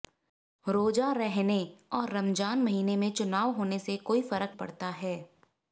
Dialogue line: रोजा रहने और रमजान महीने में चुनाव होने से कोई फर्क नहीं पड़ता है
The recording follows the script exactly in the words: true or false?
false